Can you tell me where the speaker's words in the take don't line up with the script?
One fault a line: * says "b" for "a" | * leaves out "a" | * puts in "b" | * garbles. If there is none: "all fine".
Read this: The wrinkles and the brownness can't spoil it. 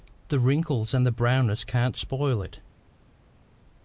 all fine